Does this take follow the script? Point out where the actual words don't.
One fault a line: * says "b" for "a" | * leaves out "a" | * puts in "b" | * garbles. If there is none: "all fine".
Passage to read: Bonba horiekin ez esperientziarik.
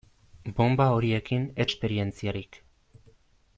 all fine